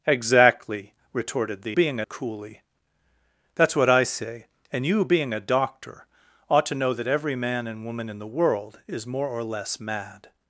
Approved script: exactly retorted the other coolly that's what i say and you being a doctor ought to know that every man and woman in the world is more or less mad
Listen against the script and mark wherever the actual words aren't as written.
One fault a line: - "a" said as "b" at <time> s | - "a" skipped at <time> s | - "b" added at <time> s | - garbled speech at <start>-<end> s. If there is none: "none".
- "other" said as "being" at 1.7 s